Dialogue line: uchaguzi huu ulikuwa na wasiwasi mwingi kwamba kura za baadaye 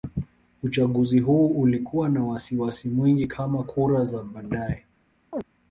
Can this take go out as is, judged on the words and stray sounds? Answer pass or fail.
fail